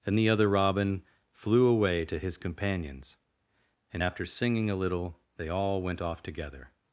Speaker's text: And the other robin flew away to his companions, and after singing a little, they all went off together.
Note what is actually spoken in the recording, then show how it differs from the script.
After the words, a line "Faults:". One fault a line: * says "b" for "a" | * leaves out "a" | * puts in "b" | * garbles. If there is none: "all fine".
And the other robin flew away to his companions, and after singing a little, they all went off together.
Faults:
all fine